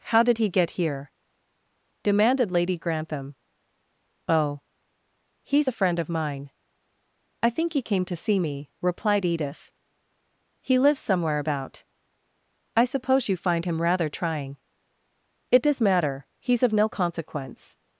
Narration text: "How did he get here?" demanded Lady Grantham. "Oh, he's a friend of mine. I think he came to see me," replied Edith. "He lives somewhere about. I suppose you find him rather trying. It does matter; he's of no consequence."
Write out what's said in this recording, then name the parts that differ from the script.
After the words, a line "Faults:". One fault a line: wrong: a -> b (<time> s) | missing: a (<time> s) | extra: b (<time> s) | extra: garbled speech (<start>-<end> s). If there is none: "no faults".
"How did he get here?" demanded Lady Grantham. "Oh, he's a friend of mine. I think he came to see me," replied Edith. "He lives somewhere about. I suppose you find him rather trying. It does matter; he's of no consequence."
Faults:
no faults